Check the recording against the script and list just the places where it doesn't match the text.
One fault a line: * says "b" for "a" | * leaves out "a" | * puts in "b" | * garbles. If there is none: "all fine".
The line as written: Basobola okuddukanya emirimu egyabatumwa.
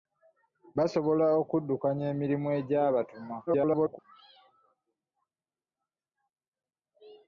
* garbles